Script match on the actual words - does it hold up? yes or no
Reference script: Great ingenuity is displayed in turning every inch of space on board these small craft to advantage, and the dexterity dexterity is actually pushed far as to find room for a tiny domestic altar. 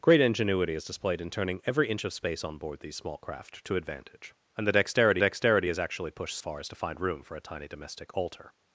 yes